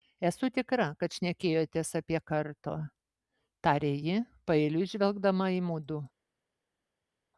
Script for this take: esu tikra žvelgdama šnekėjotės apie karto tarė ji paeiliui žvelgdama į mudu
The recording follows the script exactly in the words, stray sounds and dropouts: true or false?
false